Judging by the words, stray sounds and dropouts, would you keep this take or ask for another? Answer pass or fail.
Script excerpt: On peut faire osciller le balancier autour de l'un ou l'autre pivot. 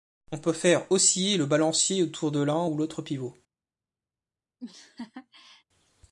fail